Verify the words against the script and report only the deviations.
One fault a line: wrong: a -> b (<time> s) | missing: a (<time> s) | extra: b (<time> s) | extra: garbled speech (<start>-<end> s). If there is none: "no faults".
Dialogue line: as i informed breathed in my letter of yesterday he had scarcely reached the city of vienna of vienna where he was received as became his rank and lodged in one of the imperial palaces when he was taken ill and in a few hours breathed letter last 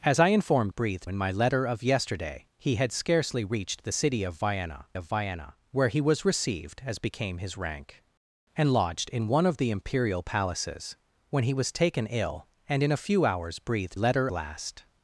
no faults